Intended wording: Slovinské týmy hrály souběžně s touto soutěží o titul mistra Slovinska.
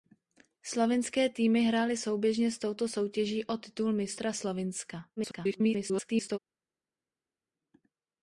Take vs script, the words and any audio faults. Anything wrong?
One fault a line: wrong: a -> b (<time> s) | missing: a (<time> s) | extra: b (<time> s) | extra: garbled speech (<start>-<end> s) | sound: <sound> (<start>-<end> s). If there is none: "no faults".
extra: garbled speech (5.2-6.4 s)